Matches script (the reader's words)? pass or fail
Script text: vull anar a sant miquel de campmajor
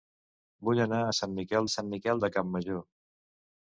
fail